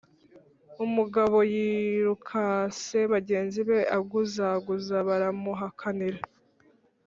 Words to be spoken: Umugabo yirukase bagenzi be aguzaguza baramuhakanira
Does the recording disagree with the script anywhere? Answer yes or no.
no